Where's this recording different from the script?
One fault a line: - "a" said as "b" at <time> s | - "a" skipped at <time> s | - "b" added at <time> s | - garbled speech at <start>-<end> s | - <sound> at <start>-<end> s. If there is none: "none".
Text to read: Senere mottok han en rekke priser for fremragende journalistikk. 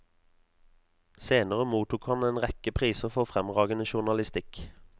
none